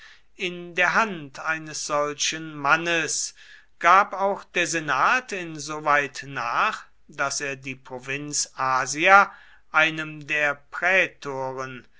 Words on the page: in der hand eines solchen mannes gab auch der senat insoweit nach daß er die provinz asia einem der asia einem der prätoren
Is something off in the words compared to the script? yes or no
yes